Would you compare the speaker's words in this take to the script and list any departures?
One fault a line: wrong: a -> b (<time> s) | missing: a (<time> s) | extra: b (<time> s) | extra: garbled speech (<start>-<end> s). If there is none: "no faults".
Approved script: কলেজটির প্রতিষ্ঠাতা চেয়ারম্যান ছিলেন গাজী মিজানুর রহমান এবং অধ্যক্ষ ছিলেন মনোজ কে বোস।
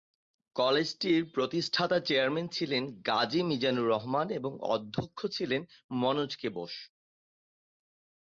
no faults